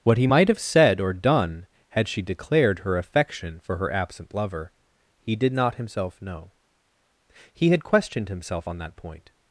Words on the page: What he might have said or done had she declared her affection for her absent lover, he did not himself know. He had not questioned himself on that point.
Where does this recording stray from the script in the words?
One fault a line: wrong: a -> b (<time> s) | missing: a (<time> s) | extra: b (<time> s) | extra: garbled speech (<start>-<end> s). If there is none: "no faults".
missing: not (7.8 s)